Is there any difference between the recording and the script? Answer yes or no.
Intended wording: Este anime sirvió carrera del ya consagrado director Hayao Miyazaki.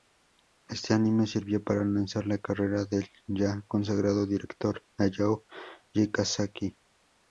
yes